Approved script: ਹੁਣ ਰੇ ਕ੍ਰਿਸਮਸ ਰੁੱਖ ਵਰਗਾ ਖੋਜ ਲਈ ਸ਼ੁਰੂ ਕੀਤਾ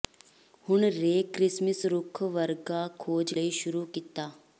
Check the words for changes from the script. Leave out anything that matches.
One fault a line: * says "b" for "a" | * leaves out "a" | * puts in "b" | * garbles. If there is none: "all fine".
all fine